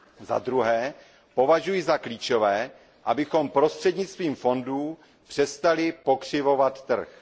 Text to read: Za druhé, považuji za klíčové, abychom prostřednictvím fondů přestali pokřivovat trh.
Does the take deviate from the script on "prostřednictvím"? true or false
false